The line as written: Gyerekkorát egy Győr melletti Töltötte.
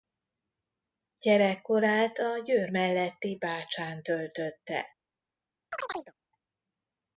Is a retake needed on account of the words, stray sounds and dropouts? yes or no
yes